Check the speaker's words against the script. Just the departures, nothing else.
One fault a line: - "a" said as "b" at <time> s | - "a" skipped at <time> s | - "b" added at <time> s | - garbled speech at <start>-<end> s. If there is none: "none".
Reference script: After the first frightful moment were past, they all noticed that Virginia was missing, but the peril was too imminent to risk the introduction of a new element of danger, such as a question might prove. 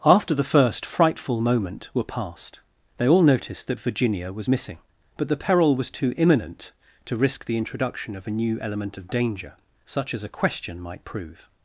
none